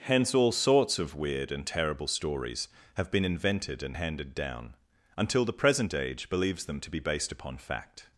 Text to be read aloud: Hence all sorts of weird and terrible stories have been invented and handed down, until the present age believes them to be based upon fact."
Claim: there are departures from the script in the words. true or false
false